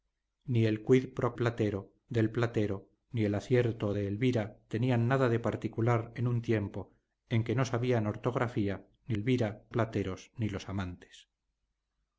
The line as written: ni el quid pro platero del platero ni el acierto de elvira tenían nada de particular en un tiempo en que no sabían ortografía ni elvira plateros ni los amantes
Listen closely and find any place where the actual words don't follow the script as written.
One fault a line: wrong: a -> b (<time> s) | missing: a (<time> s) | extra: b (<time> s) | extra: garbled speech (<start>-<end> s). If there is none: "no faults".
no faults